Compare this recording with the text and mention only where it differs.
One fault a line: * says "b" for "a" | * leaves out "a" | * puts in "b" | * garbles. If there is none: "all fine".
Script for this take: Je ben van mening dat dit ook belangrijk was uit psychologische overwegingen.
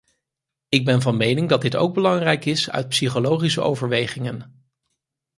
* says "Ik" for "Je"
* says "is" for "was"